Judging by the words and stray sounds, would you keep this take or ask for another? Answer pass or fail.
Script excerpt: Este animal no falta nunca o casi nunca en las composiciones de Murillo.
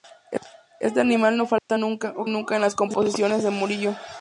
fail